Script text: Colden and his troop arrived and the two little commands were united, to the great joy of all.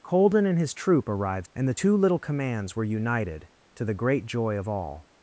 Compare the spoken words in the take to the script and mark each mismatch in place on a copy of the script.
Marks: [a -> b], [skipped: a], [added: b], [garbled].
Colden and his troop arrived and the two little commands were united, to the great joy of all.